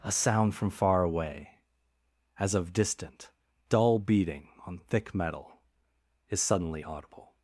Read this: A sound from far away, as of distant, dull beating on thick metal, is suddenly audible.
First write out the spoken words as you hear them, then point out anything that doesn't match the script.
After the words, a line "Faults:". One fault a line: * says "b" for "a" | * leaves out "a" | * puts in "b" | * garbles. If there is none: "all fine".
A sound from far away, as of distant, dull beating on thick metal, is suddenly audible.
Faults:
all fine